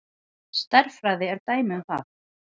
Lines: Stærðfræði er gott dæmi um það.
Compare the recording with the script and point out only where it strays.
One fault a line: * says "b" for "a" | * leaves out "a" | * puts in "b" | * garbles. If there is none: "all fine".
* leaves out "gott"